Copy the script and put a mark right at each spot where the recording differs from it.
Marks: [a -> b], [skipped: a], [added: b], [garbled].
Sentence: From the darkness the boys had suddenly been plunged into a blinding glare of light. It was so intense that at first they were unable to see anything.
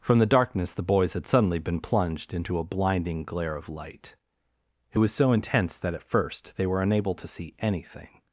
From the darkness the boys had suddenly been plunged into a blinding glare of light. It was so intense that at first they were unable to see anything.